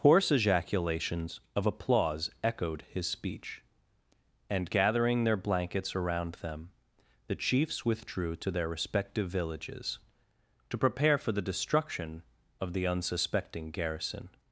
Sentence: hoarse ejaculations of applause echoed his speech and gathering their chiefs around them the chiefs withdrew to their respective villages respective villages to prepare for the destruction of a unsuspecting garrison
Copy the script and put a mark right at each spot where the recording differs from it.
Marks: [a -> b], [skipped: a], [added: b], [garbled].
hoarse ejaculations of applause echoed his speech and gathering their [chiefs -> blankets] around them the chiefs withdrew to their respective villages [skipped: respective villages] to prepare for the destruction of [a -> the] unsuspecting garrison